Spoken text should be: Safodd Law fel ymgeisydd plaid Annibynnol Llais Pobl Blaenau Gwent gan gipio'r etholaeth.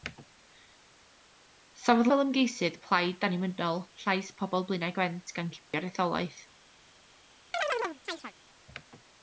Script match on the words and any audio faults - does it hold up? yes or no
no